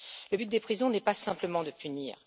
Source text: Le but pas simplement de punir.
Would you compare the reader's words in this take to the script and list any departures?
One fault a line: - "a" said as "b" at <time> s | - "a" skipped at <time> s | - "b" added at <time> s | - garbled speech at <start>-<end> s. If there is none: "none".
- "des prisons n'est" added at 0.5 s